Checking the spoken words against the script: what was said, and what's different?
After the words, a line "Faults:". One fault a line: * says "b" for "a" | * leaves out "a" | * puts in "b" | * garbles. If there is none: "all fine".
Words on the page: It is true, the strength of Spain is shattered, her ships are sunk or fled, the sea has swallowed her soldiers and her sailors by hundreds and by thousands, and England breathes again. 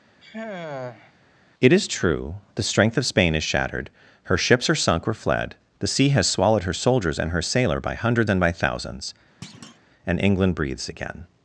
It is true, the strength of Spain is shattered, her ships are sunk or fled, the sea has swallowed her soldiers and her sailor by hundreds and by thousands, and England breathes again.
Faults:
* says "sailor" for "sailors"